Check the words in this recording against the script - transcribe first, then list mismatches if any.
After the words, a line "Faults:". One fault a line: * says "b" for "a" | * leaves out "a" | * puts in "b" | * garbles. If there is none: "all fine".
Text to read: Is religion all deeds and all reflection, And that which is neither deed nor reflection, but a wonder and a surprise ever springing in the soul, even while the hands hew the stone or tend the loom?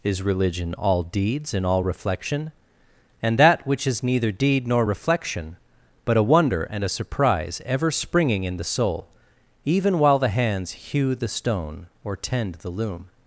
Is religion all deeds and all reflection, And that which is neither deed nor reflection, but a wonder and a surprise ever springing in the soul, even while the hands hew the stone or tend the loom?
Faults:
all fine